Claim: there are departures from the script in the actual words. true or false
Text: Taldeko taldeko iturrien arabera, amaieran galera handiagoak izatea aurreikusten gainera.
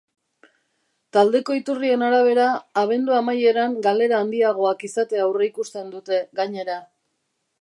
true